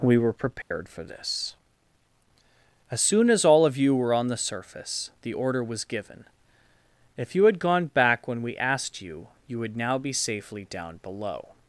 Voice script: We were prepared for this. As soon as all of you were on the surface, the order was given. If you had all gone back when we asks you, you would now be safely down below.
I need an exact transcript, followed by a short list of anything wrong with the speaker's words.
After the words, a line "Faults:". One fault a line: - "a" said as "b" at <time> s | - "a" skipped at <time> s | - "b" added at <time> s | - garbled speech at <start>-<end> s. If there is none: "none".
We were prepared for this. As soon as all of you were on the surface, the order was given. If you had gone back when we asked you, you would now be safely down below.
Faults:
- "all" skipped at 7.6 s
- "asks" said as "asked" at 8.6 s